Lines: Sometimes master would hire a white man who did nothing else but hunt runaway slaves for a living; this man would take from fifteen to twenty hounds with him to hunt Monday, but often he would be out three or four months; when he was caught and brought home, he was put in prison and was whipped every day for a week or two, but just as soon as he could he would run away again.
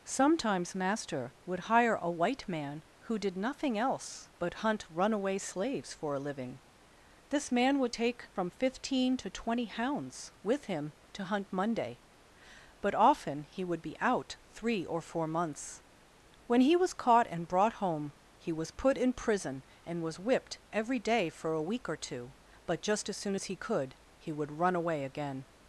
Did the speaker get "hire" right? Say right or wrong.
right